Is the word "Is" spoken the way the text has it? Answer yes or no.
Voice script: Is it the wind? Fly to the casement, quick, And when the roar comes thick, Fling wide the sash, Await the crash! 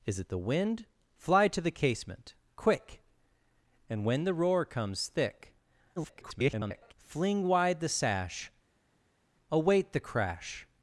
yes